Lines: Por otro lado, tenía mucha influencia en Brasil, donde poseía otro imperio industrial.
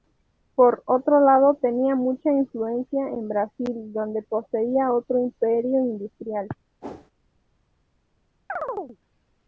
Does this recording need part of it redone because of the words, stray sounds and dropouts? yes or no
yes